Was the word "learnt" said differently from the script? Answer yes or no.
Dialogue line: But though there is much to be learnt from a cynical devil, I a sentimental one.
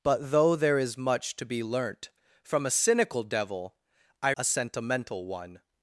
no